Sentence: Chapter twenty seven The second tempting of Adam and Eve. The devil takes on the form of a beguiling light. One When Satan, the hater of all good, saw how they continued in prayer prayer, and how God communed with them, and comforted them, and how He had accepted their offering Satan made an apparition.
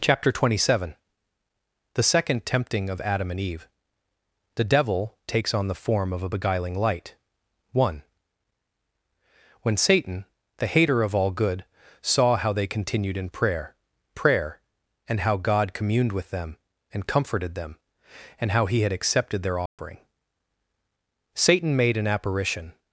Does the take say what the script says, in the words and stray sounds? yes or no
no